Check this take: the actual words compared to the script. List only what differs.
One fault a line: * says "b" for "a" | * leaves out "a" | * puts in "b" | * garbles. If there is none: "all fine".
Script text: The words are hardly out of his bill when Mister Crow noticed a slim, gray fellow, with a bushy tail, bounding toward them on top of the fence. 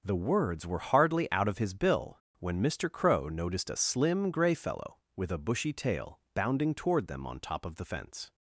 * says "were" for "are"